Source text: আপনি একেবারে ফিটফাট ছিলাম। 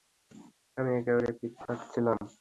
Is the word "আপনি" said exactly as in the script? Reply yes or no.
no